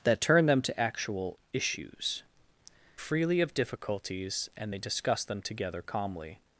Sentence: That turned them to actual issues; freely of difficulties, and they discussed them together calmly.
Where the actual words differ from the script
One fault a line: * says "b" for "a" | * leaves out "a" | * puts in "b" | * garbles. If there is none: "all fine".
all fine